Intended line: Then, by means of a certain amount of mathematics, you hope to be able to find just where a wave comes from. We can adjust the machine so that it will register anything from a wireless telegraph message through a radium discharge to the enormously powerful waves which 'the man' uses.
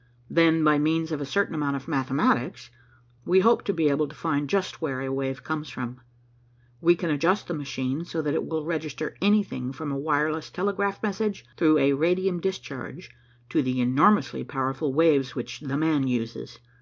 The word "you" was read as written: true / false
false